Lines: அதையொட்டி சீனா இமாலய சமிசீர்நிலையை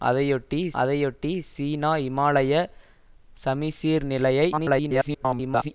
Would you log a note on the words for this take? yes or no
yes